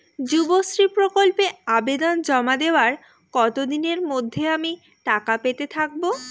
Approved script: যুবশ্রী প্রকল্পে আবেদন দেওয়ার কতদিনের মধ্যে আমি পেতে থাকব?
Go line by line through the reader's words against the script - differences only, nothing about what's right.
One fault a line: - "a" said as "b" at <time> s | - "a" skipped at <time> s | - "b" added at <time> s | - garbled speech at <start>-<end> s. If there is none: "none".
- "জমা" added at 2.2 s
- "টাকা" added at 5.0 s